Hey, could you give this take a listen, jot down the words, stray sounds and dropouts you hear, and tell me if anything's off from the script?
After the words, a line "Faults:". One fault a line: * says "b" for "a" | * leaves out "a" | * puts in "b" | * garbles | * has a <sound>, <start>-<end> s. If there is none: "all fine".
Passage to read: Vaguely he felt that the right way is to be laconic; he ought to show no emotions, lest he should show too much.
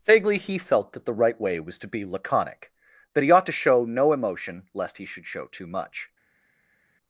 Vaguely he felt that the right way was to be laconic; that he ought to show no emotion, lest he should show too much.
Faults:
* says "was" for "is"
* puts in "that"
* says "emotion" for "emotions"